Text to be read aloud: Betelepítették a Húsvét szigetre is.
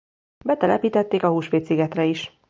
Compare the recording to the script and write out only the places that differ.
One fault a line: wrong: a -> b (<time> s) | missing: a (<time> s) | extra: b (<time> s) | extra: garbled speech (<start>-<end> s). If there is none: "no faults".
no faults